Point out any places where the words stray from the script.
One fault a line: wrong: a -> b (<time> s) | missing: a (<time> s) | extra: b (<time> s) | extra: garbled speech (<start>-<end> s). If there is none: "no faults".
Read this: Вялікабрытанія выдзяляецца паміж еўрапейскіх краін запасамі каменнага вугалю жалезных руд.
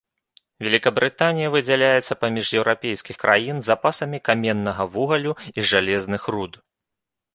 extra: і (5.6 s)